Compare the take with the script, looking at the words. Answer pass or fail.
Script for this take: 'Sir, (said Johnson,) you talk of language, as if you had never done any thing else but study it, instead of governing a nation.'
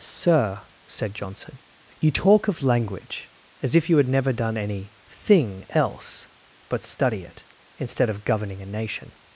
pass